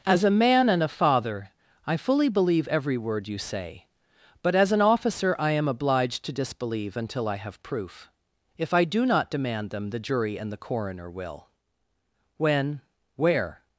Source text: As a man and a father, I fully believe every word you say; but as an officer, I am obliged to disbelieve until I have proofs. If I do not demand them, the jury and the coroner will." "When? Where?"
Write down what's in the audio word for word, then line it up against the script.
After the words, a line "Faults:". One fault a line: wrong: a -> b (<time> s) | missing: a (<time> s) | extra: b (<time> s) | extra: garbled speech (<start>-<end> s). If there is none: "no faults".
As a man and a father, I fully believe every word you say; but as an officer, I am obliged to disbelieve until I have proof. If I do not demand them, the jury and the coroner will." "When? Where?"
Faults:
wrong: proofs -> proof (7.6 s)